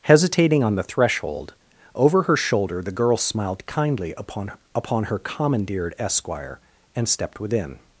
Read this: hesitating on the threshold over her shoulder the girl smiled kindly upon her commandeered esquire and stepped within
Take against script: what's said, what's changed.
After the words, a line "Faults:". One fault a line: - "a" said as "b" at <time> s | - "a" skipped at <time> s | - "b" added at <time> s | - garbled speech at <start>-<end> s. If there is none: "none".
hesitating on the threshold over her shoulder the girl smiled kindly upon upon her commandeered esquire and stepped within
Faults:
- "upon" added at 4.7 s